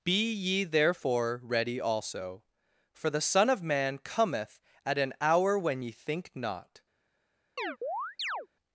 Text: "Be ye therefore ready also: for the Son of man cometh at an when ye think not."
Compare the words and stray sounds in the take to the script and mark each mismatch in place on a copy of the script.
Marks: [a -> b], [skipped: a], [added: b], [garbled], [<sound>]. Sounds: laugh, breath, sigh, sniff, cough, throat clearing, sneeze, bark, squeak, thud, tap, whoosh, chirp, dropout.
"Be ye therefore ready also: for the Son of man cometh at an [added: hour] when ye think not." [chirp]